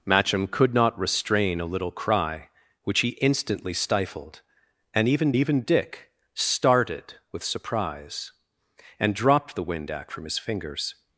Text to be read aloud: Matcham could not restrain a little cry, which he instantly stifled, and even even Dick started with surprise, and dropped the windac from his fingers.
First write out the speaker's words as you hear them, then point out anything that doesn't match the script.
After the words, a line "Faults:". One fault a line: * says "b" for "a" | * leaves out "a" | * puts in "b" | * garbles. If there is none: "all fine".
Matcham could not restrain a little cry, which he instantly stifled, and even even Dick started with surprise, and dropped the windac from his fingers.
Faults:
all fine